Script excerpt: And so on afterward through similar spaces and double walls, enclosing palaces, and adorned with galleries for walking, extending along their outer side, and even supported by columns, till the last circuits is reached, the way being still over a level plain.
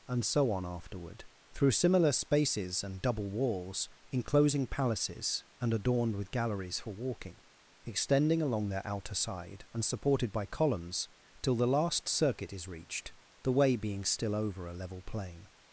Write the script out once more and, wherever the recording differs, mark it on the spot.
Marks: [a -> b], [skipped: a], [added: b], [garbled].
And so on afterward through similar spaces and double walls, enclosing palaces, and adorned with galleries for walking, extending along their outer side, and [skipped: even] supported by columns, till the last [circuits -> circuit] is reached, the way being still over a level plain.